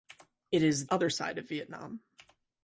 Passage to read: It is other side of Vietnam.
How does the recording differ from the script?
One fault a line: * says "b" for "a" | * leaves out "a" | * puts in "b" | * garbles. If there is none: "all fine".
all fine